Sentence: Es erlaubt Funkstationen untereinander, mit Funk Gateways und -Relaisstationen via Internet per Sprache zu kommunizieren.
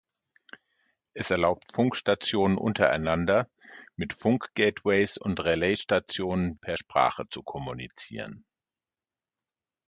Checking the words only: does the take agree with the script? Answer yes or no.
no